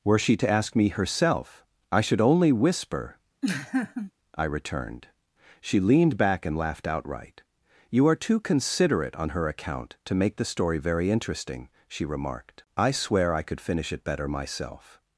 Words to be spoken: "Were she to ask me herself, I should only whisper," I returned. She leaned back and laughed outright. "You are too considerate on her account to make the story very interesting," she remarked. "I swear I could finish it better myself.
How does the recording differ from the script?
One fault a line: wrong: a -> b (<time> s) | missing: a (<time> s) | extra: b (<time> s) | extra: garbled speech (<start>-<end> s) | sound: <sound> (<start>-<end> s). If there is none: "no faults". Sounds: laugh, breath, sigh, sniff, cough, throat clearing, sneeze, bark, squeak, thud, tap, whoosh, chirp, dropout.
sound: laugh (3.4-4.1 s)